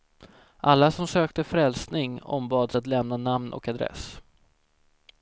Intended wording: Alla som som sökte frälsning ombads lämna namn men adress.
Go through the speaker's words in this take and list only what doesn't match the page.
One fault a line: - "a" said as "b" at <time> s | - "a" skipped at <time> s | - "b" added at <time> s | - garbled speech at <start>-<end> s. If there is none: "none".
- "som" skipped at 1.1 s
- "att" added at 2.7 s
- "men" said as "och" at 3.5 s